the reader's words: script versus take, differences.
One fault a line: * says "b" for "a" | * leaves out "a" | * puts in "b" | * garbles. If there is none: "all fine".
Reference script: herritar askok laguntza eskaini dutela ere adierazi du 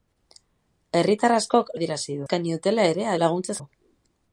* says "adierazi" for "laguntza"
* says "laguntza" for "adierazi"